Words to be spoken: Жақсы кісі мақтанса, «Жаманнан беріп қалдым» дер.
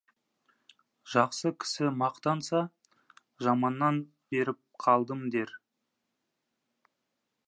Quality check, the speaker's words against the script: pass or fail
pass